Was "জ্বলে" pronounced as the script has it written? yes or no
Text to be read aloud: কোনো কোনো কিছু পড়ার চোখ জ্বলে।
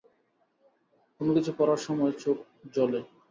yes